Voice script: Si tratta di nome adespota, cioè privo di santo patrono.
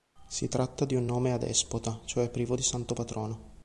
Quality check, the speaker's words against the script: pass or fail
fail